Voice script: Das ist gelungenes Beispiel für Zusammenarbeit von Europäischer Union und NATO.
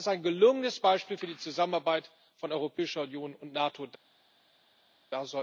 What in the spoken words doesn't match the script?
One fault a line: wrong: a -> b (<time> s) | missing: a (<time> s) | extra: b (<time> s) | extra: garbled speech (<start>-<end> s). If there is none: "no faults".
extra: ein (0.1 s)
extra: die (1.3 s)